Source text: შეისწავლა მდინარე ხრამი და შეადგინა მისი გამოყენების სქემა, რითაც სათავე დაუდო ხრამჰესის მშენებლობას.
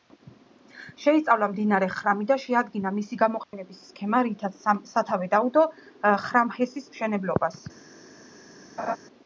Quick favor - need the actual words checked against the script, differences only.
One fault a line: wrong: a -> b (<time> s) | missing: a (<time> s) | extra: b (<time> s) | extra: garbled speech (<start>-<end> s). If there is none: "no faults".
no faults